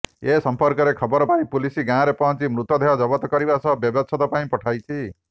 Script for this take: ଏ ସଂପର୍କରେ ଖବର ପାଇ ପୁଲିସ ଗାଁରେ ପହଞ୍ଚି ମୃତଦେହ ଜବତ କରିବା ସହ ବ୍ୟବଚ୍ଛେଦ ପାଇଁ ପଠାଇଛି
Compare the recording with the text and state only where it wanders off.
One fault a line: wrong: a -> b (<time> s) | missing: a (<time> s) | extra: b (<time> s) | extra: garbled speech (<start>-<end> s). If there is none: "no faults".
no faults